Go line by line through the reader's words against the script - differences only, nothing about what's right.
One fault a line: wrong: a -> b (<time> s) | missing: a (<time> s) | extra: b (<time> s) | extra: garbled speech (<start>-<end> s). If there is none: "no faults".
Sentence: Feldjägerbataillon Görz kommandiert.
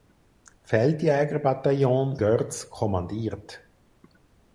no faults